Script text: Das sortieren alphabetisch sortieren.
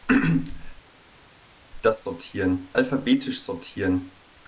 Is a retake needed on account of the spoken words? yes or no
no